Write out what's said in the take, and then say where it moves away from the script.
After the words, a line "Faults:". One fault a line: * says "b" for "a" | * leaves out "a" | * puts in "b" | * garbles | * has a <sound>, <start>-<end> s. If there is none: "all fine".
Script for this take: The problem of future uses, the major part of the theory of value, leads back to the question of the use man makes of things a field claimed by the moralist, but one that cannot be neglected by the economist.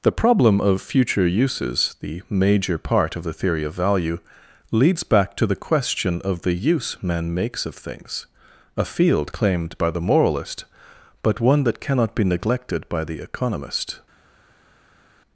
The problem of future uses, the major part of the theory of value, leads back to the question of the use man makes of things a field claimed by the moralist, but one that cannot be neglected by the economist.
Faults:
all fine